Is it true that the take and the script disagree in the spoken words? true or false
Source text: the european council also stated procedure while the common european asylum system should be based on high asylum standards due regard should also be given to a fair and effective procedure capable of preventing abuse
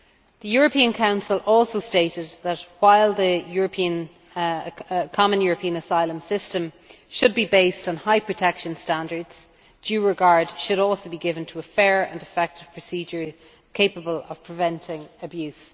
true